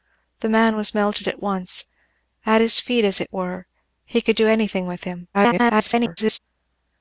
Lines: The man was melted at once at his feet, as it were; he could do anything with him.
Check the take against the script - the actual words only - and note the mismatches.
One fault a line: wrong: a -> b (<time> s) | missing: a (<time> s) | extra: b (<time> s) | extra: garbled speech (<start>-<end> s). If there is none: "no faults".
extra: garbled speech (5.3-6.4 s)